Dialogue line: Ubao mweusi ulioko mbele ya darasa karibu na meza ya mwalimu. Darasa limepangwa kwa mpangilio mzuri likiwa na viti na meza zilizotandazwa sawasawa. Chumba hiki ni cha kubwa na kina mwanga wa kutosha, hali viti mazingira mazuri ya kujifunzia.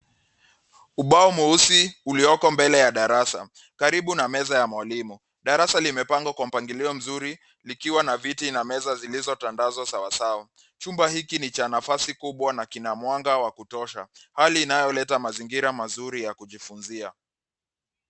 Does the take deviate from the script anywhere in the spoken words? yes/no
yes